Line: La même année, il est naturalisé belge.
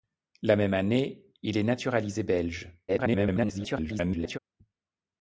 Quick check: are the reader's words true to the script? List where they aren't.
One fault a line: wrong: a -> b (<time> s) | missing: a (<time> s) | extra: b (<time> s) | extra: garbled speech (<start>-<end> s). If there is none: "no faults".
extra: garbled speech (2.9-4.4 s)